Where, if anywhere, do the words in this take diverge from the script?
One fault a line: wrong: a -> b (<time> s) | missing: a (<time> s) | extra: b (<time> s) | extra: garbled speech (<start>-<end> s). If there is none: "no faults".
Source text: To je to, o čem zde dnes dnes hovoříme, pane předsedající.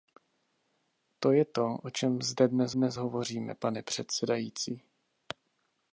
no faults